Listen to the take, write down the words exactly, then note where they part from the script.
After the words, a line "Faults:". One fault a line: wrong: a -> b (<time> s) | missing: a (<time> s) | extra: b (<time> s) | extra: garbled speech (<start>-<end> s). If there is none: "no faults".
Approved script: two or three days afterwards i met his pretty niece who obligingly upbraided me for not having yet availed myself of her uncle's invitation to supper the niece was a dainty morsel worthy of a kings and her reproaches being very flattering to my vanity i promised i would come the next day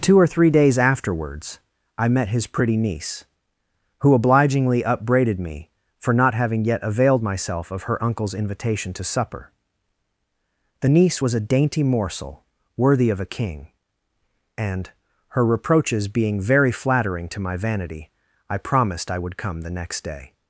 two or three days afterwards i met his pretty niece who obligingly upbraided me for not having yet availed myself of her uncle's invitation to supper the niece was a dainty morsel worthy of a king and her reproaches being very flattering to my vanity i promised i would come the next day
Faults:
wrong: kings -> king (13.3 s)